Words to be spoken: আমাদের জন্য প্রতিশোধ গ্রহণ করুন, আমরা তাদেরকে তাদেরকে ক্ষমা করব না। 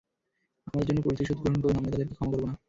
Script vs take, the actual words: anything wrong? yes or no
yes